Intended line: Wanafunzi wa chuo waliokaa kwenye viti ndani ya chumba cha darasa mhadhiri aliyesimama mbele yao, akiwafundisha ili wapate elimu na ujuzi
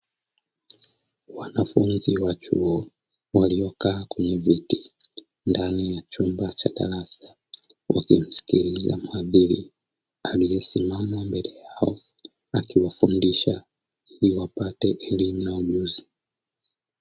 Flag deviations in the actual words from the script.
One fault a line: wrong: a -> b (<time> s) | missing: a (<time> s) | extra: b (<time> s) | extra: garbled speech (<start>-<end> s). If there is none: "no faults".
extra: wakimsikiliza (7.9 s)